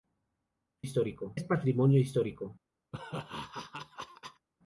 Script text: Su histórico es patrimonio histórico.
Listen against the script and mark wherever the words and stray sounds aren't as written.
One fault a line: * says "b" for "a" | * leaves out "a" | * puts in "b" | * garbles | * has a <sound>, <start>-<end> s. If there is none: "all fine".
* has a laugh, 2.9-4.5 s